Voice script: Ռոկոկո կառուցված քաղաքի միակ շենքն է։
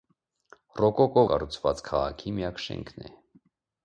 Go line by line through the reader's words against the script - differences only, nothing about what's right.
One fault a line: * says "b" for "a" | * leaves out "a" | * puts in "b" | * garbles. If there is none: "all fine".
all fine